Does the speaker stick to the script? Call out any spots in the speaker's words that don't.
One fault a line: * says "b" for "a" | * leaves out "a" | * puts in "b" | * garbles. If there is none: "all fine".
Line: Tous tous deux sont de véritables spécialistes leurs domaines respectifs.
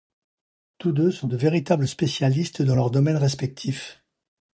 * leaves out "tous"
* puts in "dans"